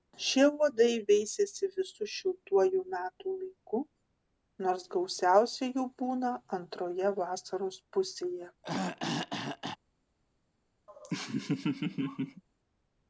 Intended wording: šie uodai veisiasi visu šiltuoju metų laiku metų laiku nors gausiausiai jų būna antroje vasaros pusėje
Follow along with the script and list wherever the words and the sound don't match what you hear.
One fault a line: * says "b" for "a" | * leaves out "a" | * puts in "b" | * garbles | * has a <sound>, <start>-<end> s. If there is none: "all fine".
* leaves out "metų laiku"
* has a throat clearing, 8.6-9.8 s
* has a laugh, 10.9-12.4 s